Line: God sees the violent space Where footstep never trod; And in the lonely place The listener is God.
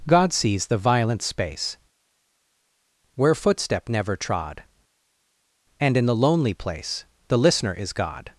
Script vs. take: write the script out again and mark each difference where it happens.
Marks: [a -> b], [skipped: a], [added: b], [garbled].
God sees the violent space Where footstep never trod; And in the lonely place The listener is God.